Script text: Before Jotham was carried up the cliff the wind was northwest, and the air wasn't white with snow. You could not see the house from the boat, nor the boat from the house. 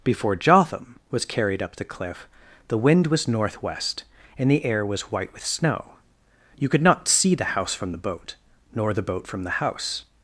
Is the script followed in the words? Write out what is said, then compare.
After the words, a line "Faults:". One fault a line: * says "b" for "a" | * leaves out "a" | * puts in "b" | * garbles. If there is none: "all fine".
Before Jotham was carried up the cliff the wind was northwest, and the air was white with snow. You could not see the house from the boat, nor the boat from the house.
Faults:
* says "was" for "wasn't"